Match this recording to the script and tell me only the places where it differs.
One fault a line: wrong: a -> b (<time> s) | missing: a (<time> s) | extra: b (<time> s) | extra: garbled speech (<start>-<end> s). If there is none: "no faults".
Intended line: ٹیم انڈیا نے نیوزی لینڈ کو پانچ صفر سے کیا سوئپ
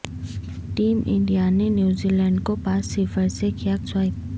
no faults